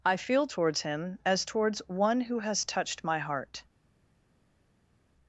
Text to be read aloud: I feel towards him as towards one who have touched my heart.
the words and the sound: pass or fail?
fail